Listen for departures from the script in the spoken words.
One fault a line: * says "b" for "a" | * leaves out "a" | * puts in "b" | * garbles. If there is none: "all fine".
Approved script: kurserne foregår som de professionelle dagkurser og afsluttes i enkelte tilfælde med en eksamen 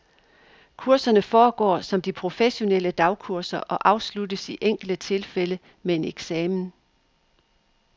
all fine